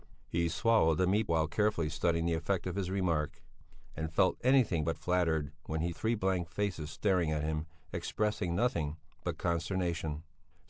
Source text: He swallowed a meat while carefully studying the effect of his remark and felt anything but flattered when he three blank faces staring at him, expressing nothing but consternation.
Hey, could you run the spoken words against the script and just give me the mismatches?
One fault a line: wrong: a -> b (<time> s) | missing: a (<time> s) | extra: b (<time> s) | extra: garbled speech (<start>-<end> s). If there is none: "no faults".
no faults